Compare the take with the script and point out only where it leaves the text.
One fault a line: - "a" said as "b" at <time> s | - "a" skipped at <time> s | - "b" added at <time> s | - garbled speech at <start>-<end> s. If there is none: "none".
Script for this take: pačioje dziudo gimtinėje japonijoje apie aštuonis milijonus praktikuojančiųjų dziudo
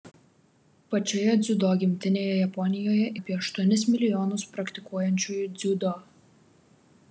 none